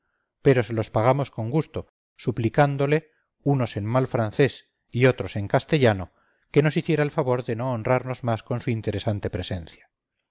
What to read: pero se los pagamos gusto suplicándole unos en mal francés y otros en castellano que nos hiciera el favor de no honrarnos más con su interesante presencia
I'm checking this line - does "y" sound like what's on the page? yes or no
yes